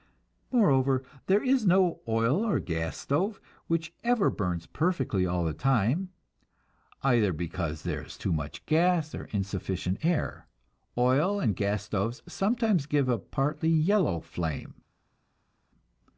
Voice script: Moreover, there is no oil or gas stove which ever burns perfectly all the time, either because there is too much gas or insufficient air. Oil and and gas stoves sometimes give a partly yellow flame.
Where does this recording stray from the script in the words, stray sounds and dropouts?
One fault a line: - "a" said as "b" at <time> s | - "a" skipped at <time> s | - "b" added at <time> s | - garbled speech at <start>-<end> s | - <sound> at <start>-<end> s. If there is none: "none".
- "and" skipped at 11.6 s